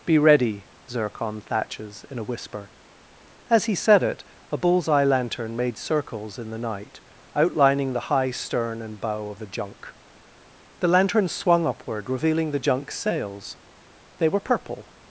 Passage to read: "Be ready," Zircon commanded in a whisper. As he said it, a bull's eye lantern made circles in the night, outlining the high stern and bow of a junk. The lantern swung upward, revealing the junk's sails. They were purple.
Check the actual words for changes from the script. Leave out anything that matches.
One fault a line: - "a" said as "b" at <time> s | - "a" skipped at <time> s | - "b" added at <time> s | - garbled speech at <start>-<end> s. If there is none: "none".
- "commanded" said as "thatches" at 1.4 s